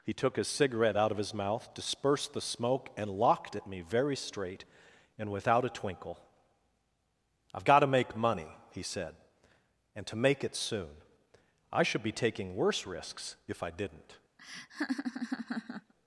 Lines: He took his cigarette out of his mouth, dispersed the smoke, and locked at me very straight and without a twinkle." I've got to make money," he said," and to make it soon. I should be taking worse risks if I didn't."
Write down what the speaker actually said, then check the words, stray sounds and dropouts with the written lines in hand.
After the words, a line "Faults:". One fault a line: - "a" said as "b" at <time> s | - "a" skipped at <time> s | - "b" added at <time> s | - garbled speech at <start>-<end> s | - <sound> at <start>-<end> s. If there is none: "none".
He took his cigarette out of his mouth, dispersed the smoke, and locked at me very straight and without a twinkle." I've got to make money," he said," and to make it soon. I should be taking worse risks if I didn't."
Faults:
- laugh at 14.4-15.9 s